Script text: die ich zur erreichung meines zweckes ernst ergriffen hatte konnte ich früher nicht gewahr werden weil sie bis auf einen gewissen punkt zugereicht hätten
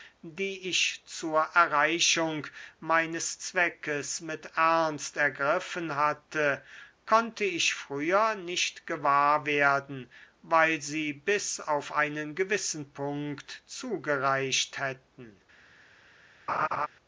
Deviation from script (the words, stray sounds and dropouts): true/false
true